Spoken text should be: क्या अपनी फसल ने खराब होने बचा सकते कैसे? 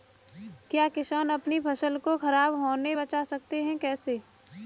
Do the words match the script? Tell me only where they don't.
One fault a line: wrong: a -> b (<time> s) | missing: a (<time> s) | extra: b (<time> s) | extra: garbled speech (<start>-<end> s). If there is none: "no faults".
extra: किसान (0.9 s)
wrong: ने -> को (2.0 s)
extra: हैं (3.6 s)